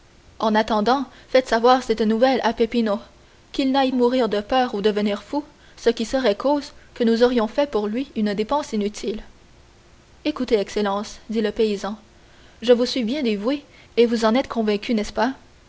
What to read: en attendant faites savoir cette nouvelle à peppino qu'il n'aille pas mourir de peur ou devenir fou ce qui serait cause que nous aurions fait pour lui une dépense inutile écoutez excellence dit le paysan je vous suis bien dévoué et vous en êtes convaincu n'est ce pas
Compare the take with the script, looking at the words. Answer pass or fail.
fail